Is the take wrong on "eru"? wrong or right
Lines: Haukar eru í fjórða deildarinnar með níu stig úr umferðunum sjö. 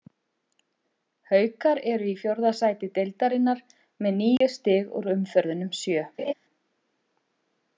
right